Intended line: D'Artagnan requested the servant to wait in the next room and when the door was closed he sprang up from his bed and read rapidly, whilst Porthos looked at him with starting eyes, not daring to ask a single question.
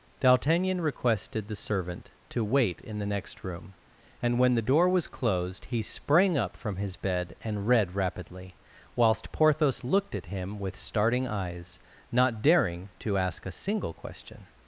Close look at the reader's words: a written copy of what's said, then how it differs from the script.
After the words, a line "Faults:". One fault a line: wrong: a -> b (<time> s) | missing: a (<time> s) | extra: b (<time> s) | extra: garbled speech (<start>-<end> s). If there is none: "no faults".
D'Artagnan requested the servant to wait in the next room and when the door was closed he sprang up from his bed and read rapidly, whilst Porthos looked at him with starting eyes, not daring to ask a single question.
Faults:
no faults